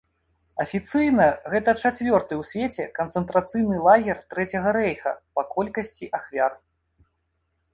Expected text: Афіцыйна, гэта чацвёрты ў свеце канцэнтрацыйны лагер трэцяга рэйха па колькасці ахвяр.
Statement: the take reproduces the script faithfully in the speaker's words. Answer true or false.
true